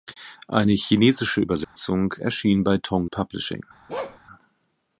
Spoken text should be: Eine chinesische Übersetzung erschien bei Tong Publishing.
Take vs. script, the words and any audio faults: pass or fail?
fail